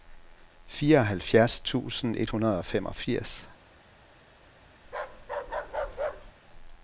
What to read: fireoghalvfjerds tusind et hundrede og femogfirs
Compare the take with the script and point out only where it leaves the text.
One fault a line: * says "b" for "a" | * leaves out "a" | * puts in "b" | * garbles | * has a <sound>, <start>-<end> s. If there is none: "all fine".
* has a bark, 4.8-6.3 s